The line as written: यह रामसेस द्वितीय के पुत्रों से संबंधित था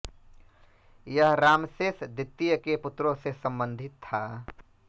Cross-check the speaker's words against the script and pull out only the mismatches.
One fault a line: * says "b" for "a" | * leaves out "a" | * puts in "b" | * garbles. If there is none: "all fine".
all fine